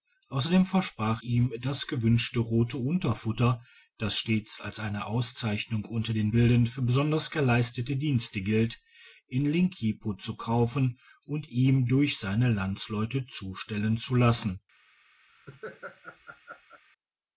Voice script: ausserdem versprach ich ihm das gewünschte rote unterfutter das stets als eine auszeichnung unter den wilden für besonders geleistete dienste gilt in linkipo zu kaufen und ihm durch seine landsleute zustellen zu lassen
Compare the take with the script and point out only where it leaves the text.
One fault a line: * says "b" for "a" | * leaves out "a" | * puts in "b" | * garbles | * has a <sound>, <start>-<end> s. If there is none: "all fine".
* leaves out "ich"
* has a laugh, 15.3-16.8 s